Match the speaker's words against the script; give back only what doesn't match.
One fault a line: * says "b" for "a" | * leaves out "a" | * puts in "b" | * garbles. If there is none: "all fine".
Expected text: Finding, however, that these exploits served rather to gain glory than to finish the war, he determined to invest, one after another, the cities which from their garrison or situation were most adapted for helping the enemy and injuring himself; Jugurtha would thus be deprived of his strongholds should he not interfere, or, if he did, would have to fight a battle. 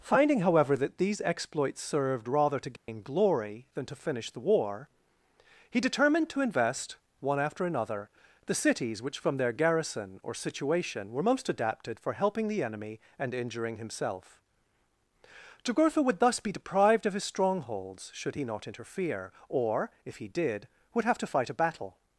all fine